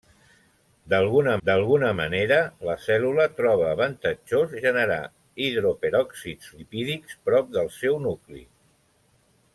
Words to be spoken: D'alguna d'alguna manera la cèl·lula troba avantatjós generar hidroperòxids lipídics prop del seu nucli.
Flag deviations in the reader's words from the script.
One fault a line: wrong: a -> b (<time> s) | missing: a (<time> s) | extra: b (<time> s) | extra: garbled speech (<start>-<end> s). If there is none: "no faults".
no faults